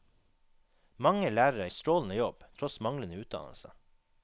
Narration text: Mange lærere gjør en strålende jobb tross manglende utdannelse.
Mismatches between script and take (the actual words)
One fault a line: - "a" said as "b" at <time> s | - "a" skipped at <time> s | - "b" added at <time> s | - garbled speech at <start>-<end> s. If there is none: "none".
- "gjør" skipped at 1.7 s